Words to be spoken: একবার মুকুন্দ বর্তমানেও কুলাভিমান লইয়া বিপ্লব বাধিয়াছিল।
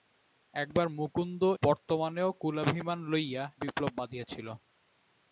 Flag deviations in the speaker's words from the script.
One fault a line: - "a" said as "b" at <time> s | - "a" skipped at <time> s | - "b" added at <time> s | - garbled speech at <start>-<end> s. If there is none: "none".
none